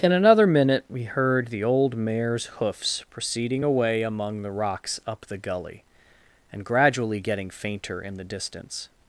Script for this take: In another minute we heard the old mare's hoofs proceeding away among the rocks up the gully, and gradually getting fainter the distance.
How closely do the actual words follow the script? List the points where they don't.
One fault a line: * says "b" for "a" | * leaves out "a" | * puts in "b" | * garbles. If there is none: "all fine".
* puts in "in"